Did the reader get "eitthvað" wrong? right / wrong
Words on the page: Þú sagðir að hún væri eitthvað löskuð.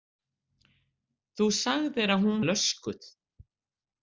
wrong